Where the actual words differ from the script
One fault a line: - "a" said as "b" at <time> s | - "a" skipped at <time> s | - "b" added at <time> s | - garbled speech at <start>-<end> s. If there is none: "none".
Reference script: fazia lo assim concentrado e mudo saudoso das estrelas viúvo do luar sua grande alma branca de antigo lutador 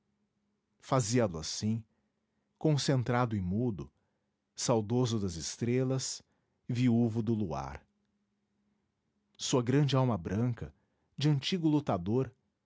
none